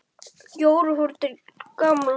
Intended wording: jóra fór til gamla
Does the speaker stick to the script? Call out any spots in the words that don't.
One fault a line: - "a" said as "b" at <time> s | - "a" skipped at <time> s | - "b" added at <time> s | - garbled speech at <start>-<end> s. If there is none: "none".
none